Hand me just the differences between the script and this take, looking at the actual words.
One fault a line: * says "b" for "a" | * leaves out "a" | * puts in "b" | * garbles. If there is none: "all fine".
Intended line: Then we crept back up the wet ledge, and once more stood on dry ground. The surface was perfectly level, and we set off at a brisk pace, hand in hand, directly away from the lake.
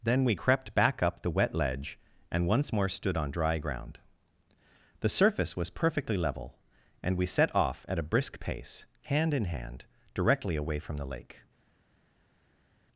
all fine